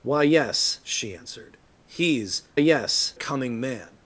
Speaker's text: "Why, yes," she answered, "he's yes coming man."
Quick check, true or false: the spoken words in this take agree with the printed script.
true